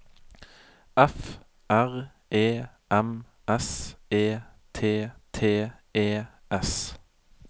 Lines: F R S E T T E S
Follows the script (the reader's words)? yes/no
no